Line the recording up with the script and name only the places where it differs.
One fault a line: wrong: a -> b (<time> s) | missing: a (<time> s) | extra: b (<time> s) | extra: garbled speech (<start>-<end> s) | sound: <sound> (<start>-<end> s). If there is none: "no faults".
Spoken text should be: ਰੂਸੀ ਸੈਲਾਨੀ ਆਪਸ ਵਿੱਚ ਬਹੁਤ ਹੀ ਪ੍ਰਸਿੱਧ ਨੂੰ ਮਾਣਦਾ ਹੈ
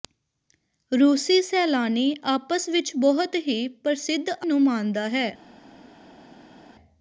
no faults